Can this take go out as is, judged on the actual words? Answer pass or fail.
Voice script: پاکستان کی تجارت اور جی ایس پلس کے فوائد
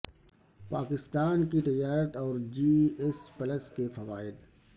pass